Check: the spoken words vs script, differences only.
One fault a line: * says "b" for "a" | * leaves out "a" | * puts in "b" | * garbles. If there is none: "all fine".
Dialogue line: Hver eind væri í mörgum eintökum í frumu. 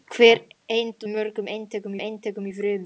* leaves out "væri"
* puts in "eintökum"